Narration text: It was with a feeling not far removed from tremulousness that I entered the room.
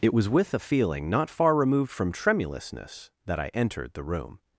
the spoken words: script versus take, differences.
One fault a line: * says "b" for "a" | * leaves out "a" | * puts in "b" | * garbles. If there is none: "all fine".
all fine